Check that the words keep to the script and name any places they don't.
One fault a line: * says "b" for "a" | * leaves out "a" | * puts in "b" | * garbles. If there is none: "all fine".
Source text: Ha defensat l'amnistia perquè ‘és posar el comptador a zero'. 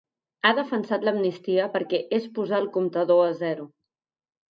all fine